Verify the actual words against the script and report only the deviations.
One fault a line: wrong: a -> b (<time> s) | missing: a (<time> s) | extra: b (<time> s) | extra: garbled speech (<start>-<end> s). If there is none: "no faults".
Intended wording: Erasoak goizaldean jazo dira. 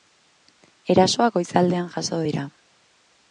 no faults